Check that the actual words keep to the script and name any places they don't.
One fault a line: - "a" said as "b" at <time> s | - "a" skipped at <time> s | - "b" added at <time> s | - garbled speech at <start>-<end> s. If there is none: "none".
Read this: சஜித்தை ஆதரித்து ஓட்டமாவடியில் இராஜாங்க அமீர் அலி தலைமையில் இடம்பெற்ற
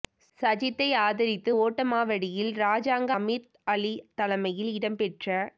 none